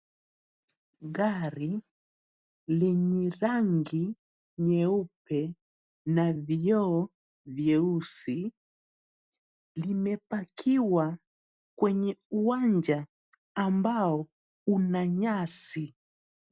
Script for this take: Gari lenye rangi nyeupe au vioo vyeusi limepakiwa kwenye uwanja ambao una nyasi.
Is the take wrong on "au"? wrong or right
wrong